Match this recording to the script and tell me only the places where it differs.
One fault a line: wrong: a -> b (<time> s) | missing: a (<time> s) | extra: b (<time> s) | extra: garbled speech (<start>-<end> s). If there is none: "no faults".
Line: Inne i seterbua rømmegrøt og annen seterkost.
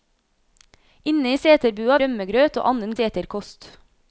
no faults